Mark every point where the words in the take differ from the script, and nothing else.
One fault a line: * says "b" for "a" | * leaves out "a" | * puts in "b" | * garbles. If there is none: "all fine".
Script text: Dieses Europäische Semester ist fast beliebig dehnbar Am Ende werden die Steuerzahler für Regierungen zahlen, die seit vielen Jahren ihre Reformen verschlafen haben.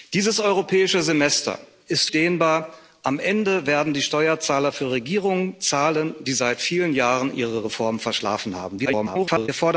* leaves out "fast beliebig"
* garbles